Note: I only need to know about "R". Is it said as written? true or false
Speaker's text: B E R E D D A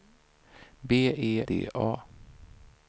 false